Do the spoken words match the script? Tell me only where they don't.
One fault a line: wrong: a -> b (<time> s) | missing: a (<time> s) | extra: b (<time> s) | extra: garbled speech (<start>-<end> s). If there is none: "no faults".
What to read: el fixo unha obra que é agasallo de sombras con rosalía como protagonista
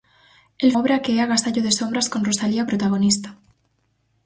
missing: fixo unha (0.7 s)
missing: como (2.6 s)